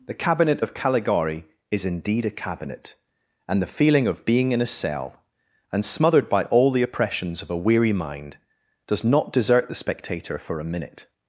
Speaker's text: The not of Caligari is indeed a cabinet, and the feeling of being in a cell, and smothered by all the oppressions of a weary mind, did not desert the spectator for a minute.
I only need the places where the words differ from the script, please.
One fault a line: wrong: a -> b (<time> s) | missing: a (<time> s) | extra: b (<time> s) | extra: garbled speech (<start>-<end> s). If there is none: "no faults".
wrong: not -> cabinet (0.1 s)
wrong: did -> does (8.9 s)